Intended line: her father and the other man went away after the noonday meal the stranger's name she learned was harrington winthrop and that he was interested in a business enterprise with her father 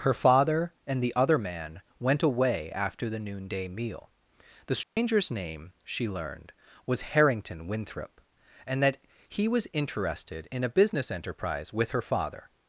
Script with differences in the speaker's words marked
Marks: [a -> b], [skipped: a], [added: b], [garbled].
her father and the other man went away after the noonday meal the stranger's name she learned was harrington winthrop and that he was interested in a business enterprise with her father